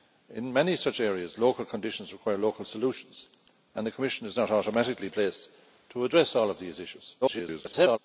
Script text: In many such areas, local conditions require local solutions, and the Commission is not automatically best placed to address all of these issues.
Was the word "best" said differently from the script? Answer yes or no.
yes